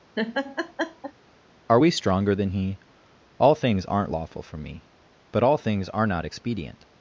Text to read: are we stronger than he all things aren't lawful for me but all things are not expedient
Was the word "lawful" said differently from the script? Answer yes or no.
no